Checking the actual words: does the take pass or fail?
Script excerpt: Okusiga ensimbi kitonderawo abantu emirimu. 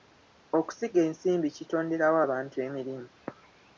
pass